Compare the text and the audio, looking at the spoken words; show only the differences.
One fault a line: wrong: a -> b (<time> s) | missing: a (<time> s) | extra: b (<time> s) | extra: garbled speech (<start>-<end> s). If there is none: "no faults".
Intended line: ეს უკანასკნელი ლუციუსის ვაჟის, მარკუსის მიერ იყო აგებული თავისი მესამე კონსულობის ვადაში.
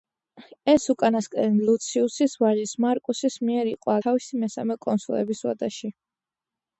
missing: აგებული (4.0 s)